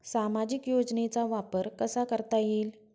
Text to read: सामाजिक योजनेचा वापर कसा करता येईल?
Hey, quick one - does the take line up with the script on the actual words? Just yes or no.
yes